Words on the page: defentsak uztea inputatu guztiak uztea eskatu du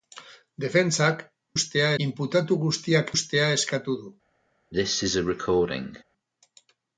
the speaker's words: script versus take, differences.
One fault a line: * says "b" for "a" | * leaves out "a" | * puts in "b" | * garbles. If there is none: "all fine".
all fine